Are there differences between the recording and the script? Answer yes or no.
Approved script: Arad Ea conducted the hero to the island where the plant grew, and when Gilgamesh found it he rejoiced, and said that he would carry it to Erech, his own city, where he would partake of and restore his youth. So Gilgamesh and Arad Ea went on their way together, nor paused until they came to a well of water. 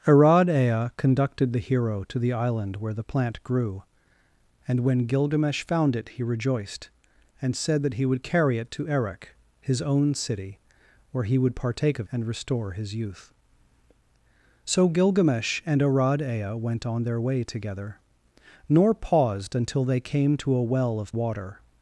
no